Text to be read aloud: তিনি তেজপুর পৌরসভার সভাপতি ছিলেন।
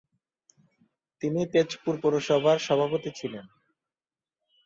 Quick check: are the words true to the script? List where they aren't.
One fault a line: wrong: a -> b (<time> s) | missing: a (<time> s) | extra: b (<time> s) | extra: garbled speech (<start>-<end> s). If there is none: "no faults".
no faults